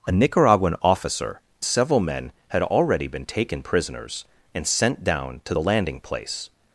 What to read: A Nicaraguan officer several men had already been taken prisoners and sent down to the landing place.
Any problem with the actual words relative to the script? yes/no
no